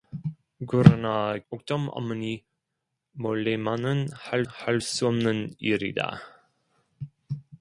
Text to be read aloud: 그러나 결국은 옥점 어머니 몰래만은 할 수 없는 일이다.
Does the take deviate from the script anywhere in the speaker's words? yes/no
yes